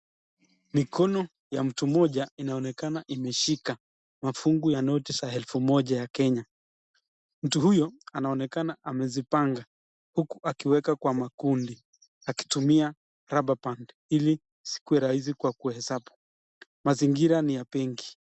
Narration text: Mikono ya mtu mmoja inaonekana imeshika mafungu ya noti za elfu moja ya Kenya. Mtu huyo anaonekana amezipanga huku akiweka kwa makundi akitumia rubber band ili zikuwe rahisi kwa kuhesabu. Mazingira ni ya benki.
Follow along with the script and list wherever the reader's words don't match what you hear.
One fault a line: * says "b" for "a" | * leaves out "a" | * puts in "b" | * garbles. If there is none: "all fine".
all fine